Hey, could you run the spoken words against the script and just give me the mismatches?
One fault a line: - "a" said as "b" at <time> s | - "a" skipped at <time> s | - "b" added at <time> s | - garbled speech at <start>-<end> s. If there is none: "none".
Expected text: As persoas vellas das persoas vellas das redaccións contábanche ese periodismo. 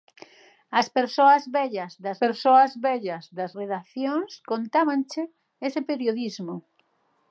none